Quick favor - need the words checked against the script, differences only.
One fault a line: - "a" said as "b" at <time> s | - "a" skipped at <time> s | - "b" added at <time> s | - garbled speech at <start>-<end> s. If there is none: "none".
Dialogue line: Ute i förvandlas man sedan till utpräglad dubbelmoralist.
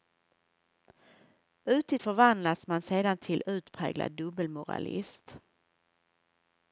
none